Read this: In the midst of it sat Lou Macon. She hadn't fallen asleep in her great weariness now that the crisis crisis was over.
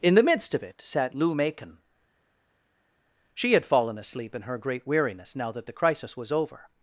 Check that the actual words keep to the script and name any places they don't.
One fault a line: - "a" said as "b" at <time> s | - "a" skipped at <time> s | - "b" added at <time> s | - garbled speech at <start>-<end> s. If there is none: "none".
- "hadn't" said as "had" at 3.5 s
- "crisis" skipped at 6.2 s